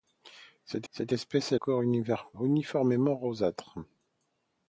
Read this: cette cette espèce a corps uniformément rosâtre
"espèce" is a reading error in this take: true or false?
false